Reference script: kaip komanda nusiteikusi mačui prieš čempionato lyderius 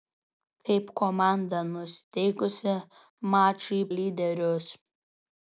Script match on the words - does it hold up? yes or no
no